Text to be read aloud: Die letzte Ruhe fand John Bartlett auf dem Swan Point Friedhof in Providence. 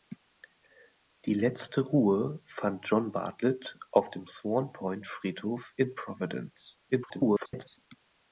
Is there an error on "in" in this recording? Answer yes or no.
no